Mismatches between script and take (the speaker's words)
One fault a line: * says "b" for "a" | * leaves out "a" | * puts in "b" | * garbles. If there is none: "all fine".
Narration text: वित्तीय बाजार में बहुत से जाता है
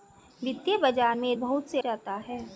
all fine